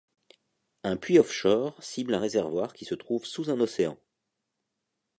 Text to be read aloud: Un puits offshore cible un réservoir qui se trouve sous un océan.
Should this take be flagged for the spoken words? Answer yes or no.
no